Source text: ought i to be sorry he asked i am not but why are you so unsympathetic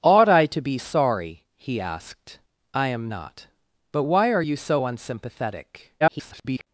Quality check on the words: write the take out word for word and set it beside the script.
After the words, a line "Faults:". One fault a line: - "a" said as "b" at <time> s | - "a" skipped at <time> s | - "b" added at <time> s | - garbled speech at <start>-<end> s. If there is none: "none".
ought i to be sorry he asked i am not but why are you so unsympathetic [garbled]
Faults:
- garbled speech at 6.0-6.7 s